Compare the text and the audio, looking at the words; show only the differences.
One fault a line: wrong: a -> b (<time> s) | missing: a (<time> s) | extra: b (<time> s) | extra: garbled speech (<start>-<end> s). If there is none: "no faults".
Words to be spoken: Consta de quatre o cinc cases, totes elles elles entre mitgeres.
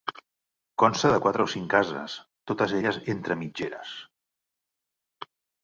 missing: elles (3.0 s)